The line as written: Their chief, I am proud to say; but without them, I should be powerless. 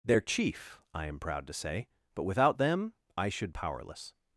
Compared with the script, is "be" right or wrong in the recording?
wrong